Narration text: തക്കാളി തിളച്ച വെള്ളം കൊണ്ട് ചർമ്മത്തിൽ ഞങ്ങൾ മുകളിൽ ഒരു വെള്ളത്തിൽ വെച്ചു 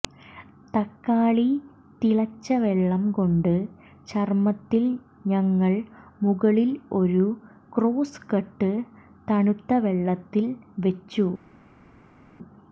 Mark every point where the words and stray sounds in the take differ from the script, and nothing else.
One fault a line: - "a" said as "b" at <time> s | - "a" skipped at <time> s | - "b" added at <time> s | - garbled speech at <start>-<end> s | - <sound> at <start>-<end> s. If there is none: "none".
- "ക്രോസ് കട്ട് തണുത്ത" added at 7.7 s